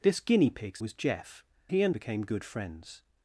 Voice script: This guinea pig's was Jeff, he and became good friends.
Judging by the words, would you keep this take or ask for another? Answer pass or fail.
pass